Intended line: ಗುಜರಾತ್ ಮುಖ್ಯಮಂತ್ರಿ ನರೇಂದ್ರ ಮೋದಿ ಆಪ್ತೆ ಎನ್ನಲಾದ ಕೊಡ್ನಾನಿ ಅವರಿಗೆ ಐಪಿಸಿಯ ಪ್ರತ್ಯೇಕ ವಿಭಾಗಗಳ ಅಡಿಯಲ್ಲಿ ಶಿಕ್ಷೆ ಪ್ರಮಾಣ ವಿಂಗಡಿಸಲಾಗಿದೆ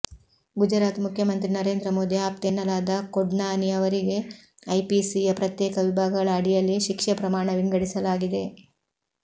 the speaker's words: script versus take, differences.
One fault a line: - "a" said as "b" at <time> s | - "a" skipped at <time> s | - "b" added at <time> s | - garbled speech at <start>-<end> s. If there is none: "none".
none